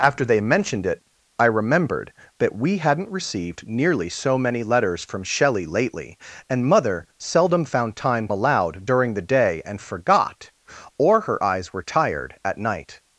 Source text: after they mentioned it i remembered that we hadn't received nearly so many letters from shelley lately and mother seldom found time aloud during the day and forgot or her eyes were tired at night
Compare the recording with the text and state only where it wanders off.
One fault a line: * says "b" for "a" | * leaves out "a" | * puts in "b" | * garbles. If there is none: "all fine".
all fine